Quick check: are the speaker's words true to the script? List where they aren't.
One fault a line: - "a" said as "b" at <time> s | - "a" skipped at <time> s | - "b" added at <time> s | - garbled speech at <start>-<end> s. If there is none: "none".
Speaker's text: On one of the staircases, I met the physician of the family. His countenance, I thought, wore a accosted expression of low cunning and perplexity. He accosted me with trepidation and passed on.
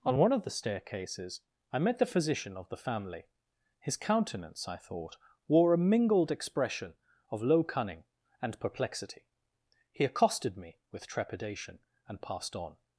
- "accosted" said as "mingled" at 5.8 s